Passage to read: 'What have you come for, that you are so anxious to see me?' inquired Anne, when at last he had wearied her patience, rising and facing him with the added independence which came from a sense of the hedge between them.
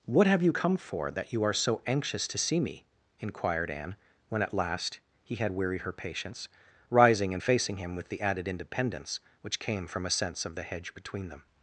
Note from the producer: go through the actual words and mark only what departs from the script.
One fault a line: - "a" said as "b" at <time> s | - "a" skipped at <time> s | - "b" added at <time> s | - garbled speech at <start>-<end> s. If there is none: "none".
none